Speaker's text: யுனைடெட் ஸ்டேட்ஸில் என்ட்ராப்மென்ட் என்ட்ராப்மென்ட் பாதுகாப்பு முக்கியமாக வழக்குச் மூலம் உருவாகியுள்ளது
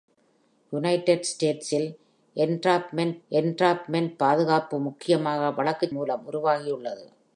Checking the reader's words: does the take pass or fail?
pass